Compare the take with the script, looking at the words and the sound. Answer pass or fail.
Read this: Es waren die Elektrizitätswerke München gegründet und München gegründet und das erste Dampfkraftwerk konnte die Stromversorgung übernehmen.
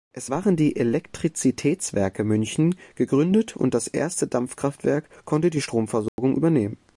fail